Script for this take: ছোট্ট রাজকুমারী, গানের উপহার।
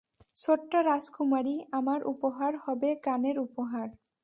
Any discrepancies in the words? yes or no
yes